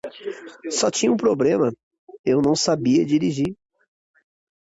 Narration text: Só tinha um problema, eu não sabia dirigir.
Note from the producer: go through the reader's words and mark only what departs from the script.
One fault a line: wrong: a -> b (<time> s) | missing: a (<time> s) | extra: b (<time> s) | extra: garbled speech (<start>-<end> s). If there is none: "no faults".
no faults